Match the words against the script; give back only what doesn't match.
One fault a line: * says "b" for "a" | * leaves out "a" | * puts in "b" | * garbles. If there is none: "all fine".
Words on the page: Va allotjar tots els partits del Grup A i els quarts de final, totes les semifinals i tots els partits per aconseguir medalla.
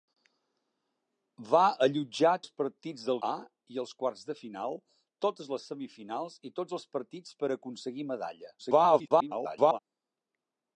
* leaves out "tots"
* leaves out "Grup"
* garbles